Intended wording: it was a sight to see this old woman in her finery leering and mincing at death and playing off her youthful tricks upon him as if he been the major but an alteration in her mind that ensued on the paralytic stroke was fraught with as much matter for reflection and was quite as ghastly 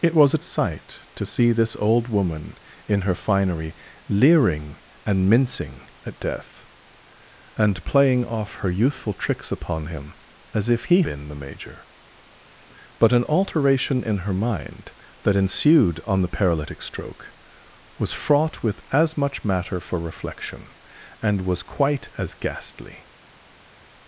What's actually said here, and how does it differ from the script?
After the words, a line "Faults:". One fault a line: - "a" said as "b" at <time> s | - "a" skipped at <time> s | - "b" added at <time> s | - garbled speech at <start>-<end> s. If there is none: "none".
it was a sight to see this old woman in her finery leering and mincing at death and playing off her youthful tricks upon him as if he been the major but an alteration in her mind that ensued on the paralytic stroke was fraught with as much matter for reflection and was quite as ghastly
Faults:
none